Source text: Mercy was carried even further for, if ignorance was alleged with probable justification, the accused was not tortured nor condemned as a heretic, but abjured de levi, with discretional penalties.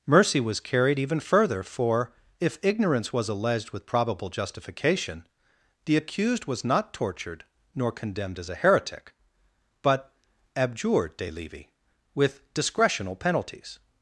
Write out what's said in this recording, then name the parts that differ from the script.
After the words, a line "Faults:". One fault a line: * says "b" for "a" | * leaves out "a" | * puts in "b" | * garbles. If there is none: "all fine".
Mercy was carried even further for, if ignorance was alleged with probable justification, the accused was not tortured nor condemned as a heretic, but abjured de levi, with discretional penalties.
Faults:
all fine